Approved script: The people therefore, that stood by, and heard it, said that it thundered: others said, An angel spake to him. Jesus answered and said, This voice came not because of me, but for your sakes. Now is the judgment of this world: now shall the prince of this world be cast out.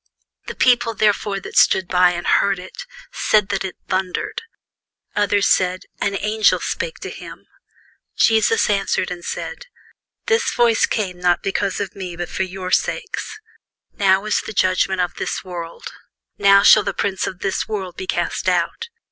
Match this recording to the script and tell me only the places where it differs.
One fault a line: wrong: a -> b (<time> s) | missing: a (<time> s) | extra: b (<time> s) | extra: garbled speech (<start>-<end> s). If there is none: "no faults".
no faults